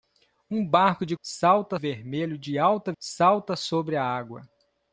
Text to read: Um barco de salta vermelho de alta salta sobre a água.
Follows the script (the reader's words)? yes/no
yes